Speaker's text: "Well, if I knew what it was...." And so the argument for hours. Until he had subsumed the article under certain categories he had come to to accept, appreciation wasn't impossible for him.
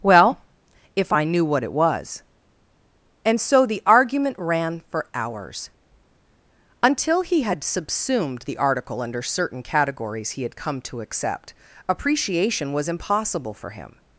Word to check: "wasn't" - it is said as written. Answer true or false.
false